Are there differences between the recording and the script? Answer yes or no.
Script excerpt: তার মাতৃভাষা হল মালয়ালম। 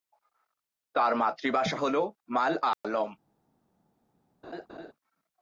no